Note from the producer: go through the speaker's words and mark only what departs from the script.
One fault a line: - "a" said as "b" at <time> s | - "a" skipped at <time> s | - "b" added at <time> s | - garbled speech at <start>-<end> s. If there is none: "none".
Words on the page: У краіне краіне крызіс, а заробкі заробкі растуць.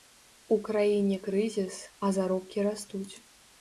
- "краіне" skipped at 1.2 s
- "заробкі" skipped at 2.7 s